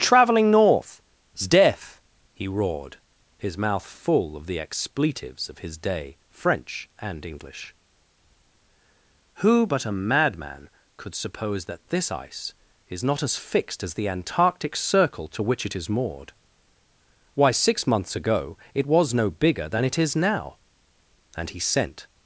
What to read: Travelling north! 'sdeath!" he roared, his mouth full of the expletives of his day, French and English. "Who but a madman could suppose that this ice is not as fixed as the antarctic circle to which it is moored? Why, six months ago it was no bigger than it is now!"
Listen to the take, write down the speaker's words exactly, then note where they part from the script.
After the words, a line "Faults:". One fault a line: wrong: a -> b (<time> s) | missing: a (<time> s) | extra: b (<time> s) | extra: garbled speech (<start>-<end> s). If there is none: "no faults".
Travelling north! 'sdeath!" he roared, his mouth full of the expletives of his day, French and English. "Who but a madman could suppose that this ice is not as fixed as the antarctic circle to which it is moored? Why, six months ago it was no bigger than it is now!" And he sent
Faults:
extra: And he sent (21.4 s)